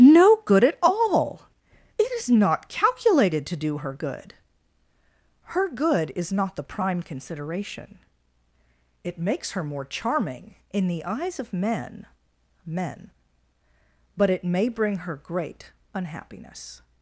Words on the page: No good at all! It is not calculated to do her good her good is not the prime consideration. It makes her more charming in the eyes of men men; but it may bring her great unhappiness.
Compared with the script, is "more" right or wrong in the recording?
right